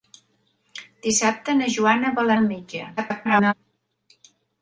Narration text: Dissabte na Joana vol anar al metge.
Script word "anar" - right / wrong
wrong